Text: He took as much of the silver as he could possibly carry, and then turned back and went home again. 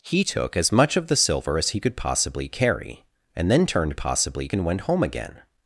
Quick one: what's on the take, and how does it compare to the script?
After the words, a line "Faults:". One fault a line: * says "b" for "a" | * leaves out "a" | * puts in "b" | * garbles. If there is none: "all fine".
He took as much of the silver as he could possibly carry, and then turned possibly and went home again.
Faults:
* says "possibly" for "back"